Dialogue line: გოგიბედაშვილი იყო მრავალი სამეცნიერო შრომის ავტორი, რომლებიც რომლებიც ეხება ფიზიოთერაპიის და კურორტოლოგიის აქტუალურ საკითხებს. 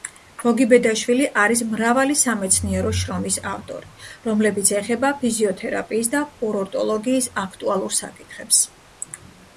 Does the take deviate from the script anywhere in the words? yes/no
yes